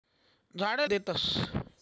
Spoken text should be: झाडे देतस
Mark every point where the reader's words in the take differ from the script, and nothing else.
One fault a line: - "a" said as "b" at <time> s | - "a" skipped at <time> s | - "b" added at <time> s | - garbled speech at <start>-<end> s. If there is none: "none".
none